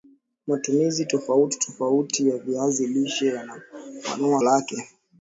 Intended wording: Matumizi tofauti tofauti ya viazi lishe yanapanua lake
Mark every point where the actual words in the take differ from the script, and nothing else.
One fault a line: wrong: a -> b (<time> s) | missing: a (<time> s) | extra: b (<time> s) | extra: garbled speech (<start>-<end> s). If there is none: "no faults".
no faults